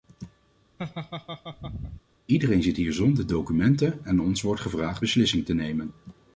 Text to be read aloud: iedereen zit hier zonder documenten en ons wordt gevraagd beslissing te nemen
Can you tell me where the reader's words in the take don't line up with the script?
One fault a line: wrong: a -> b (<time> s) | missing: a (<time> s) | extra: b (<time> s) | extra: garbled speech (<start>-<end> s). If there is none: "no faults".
no faults